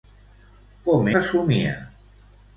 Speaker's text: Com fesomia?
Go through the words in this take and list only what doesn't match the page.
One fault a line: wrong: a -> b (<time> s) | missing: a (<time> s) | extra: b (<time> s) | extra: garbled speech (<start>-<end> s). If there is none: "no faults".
no faults